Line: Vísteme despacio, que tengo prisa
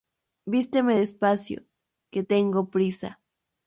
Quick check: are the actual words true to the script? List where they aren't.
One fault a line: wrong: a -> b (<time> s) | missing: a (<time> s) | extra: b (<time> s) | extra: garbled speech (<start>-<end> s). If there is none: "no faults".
no faults